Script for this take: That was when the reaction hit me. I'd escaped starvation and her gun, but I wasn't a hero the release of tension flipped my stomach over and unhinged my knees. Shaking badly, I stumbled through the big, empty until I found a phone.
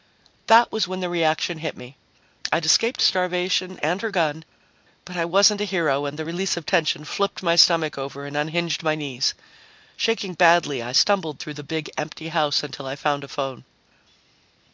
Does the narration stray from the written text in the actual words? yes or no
yes